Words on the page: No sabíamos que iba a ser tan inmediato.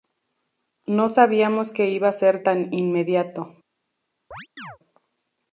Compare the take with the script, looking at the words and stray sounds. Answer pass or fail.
fail